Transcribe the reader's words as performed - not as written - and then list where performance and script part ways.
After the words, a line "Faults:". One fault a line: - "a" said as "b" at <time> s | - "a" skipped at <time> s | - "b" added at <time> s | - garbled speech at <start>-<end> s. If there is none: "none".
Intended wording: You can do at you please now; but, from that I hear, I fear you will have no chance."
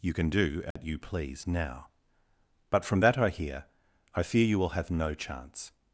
You can do at you please now; but, from that I hear, I fear you will have no chance."
Faults:
none